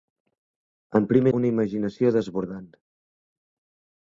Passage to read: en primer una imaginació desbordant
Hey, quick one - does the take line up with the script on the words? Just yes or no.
yes